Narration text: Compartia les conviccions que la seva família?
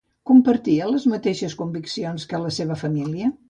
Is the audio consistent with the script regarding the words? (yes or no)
no